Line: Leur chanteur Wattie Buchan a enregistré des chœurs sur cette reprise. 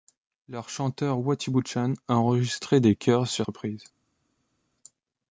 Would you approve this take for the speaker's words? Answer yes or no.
no